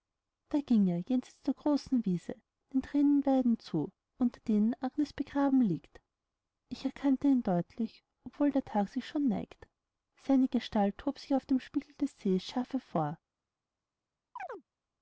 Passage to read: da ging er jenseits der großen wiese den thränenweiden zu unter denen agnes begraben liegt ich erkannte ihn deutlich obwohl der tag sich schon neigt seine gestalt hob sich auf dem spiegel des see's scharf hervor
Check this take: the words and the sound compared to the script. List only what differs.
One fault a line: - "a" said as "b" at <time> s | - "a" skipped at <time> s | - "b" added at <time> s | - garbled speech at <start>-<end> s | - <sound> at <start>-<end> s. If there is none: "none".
- chirp at 14.4-14.6 s